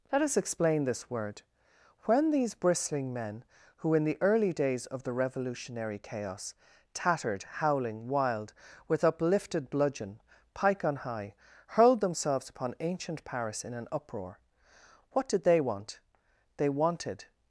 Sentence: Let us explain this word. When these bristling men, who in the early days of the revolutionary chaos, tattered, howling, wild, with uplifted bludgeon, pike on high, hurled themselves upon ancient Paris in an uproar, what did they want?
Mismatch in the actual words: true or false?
true